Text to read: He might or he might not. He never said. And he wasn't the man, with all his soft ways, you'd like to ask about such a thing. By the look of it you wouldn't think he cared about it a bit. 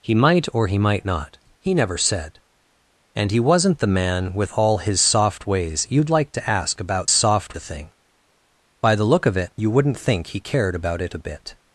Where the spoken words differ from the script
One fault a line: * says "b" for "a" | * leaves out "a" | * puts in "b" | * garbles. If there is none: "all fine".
* says "soft" for "such"